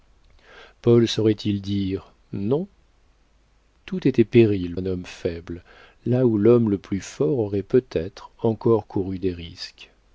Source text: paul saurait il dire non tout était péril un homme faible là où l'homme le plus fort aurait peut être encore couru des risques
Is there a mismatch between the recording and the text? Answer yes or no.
no